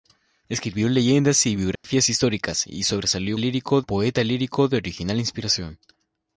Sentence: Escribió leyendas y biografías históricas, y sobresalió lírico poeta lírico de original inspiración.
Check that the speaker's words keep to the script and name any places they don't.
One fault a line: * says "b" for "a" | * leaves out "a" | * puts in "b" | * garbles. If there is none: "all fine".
all fine